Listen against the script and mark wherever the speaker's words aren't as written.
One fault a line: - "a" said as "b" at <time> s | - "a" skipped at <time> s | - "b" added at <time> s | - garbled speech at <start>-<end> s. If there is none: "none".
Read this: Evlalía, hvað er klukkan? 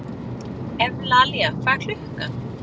none